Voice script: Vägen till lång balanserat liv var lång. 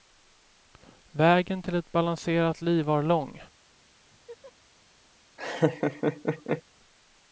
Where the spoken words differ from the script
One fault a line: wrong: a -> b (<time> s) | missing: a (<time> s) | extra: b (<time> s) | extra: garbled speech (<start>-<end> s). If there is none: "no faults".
wrong: lång -> ett (1.8 s)